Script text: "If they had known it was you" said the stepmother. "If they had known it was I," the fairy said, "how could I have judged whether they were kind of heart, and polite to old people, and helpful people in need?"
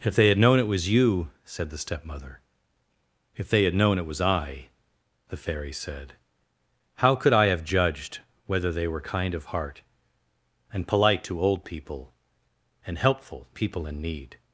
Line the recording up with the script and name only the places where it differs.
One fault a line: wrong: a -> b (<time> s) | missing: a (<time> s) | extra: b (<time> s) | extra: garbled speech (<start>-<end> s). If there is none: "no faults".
no faults